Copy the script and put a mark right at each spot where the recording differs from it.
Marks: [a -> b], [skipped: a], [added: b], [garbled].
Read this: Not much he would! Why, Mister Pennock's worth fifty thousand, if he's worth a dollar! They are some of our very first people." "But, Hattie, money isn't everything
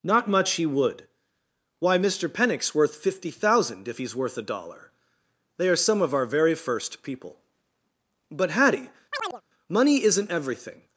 Not much he would! Why, Mister Pennock's worth fifty thousand, if he's worth a dollar! They are some of our very first people." "But, Hattie, money isn't everything